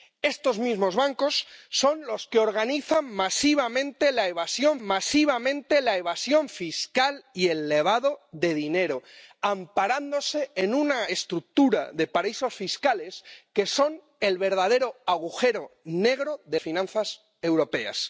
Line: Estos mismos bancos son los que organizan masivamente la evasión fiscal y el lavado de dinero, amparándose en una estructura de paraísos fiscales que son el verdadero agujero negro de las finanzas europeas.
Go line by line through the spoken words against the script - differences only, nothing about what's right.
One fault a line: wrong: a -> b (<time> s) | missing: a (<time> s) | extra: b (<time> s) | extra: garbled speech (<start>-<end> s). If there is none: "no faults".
extra: masivamente la evasión (4.8 s)
missing: las (16.6 s)